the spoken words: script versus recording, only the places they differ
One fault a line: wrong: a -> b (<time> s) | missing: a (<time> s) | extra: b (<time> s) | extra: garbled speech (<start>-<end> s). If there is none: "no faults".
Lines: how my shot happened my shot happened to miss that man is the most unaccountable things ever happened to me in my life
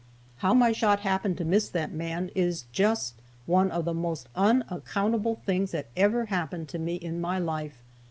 missing: my shot happened (1.4 s)
extra: just one of (2.7 s)
extra: that (5.7 s)